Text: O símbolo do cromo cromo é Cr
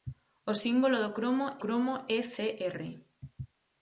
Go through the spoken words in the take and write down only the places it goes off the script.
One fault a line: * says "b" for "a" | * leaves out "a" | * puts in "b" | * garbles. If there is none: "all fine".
all fine